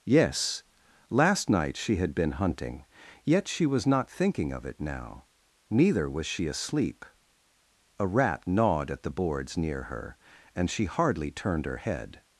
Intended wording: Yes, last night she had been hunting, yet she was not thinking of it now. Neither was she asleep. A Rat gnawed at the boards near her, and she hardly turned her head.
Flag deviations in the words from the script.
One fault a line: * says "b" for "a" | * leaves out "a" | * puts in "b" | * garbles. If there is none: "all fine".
all fine